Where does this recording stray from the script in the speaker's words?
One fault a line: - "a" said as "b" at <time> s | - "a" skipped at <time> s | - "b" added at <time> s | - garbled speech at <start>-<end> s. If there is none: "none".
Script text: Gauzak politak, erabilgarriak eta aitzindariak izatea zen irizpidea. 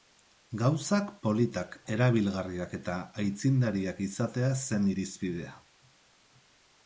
none